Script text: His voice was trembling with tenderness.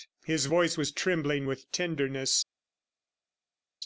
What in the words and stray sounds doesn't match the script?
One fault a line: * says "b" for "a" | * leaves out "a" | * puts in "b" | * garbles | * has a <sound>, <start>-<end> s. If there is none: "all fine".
all fine